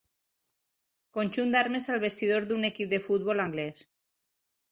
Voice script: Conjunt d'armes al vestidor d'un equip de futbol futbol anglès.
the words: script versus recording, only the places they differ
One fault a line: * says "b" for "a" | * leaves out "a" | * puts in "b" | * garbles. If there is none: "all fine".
* leaves out "futbol"